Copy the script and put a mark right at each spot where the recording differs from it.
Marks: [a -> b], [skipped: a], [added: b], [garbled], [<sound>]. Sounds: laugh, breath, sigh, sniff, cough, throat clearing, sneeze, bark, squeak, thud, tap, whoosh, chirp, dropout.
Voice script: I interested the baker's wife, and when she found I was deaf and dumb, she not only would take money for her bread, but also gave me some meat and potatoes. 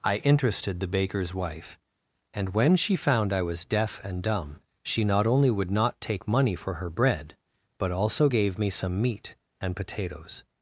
I interested the baker's wife, and when she found I was deaf and dumb, she not only would [added: not] take money for her bread, but also gave me some meat and potatoes.